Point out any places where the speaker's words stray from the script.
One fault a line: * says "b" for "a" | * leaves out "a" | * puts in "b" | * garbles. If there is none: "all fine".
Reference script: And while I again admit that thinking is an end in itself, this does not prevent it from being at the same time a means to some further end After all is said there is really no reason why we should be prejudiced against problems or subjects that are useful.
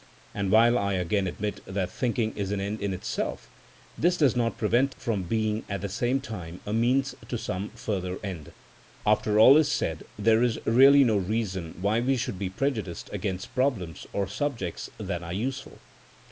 * leaves out "it"